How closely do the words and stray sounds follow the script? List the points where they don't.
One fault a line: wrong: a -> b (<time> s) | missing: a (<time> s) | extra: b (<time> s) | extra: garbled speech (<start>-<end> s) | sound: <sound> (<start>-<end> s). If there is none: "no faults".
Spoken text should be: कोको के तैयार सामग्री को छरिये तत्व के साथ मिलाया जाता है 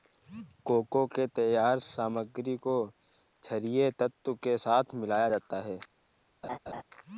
sound: laugh (6.4-6.8 s)